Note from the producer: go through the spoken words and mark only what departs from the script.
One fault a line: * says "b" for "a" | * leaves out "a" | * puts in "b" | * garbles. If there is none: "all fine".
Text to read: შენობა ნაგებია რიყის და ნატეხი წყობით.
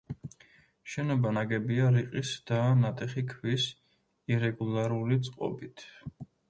* puts in "ქვის ირეგულარული"